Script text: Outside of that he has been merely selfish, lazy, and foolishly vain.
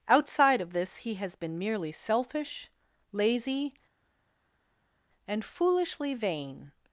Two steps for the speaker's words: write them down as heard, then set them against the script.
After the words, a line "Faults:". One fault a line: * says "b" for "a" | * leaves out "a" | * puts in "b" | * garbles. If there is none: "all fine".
Outside of this he has been merely selfish, lazy, and foolishly vain.
Faults:
* says "this" for "that"